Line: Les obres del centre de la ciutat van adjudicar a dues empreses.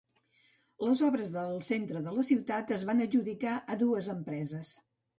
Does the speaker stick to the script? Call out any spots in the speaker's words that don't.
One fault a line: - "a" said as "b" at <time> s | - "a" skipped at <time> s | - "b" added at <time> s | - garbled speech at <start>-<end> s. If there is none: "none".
- "es" added at 2.8 s